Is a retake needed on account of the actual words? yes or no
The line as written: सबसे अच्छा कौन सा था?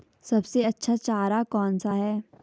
yes